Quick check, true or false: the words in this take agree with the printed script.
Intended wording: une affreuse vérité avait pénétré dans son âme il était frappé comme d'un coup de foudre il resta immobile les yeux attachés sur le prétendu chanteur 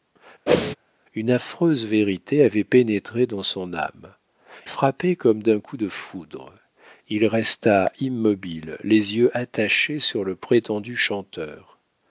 false